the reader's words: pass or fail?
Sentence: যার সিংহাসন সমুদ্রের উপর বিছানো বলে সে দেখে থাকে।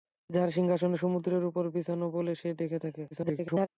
fail